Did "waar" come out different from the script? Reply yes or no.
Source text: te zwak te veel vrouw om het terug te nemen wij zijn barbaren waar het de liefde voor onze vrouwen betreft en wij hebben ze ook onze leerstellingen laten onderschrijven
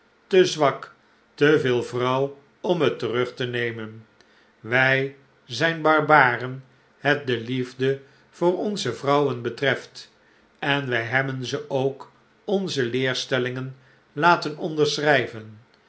yes